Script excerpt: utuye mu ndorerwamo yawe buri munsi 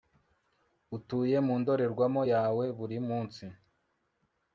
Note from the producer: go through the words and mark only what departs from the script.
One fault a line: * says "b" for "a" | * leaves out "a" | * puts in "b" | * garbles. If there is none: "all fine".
all fine